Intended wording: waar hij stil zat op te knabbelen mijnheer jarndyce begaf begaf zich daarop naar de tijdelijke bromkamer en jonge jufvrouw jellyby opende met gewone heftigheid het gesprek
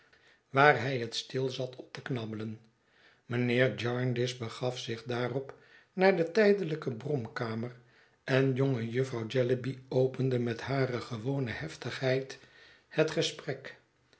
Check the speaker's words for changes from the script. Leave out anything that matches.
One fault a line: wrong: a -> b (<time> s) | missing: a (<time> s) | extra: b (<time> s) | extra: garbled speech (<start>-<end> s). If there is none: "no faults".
extra: het (1.0 s)
missing: begaf (4.8 s)
extra: hare (10.6 s)